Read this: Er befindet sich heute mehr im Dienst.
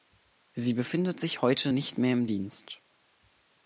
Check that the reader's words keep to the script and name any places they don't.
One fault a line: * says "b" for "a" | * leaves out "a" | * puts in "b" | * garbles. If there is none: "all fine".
* says "Sie" for "Er"
* puts in "nicht"